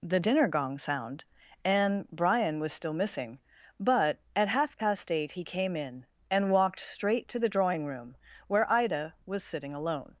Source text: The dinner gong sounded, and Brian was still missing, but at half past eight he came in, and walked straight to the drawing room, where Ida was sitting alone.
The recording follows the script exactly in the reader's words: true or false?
false